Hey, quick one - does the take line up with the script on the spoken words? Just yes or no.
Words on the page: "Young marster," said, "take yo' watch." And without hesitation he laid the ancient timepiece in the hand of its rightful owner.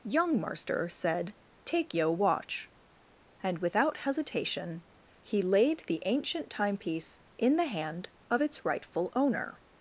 yes